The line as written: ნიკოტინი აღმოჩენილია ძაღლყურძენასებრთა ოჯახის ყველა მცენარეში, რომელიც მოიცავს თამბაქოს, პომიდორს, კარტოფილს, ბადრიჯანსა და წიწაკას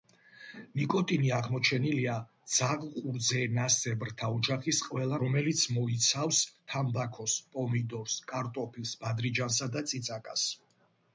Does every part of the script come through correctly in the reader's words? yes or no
no